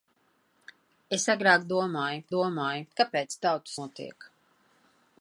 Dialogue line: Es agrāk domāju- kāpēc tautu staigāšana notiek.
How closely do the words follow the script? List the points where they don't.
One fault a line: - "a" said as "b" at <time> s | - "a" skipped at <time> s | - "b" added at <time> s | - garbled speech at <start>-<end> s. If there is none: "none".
- "domāju" added at 2.4 s
- "staigāšana" skipped at 3.8 s